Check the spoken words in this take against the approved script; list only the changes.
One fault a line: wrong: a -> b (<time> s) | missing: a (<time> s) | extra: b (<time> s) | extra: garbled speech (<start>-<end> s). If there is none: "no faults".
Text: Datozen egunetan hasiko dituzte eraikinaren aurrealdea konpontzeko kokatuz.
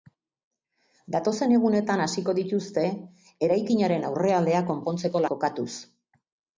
no faults